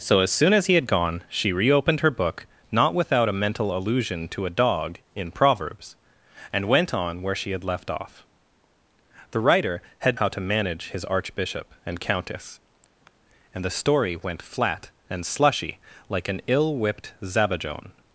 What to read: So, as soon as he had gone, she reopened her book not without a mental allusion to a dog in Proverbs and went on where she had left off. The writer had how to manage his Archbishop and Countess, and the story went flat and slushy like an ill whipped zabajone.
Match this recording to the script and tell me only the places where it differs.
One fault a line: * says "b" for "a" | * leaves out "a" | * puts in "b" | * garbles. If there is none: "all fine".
all fine